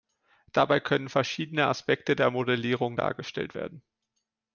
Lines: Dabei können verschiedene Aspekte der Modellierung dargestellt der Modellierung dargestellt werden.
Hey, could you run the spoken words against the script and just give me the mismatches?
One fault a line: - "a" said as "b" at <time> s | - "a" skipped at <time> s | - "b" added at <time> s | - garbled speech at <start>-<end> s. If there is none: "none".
- "der Modellierung dargestellt" skipped at 3.5 s